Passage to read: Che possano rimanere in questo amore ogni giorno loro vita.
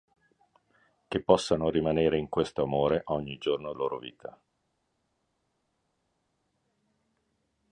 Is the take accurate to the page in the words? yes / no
yes